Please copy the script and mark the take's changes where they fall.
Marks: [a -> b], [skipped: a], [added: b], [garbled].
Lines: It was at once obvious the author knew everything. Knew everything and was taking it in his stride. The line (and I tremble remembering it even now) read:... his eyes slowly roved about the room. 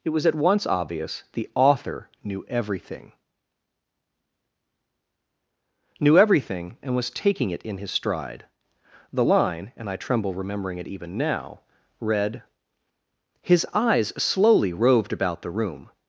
It was at once obvious the author knew everything. Knew everything and was taking it in his stride. The line (and I tremble remembering it even now) read:... his eyes slowly roved about the room.